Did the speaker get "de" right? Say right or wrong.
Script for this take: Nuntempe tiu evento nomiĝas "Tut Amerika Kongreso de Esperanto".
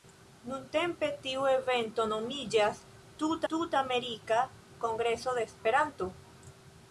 right